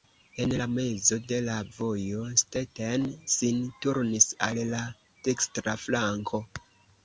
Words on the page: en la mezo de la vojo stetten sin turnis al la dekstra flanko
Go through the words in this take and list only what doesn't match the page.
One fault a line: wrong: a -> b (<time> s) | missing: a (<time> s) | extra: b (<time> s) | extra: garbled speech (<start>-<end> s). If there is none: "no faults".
no faults